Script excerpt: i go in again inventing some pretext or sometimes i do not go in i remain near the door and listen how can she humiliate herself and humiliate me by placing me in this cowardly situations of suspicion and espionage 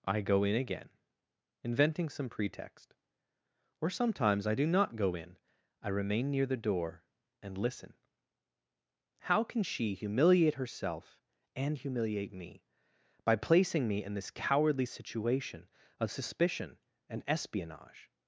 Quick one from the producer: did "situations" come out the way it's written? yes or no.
no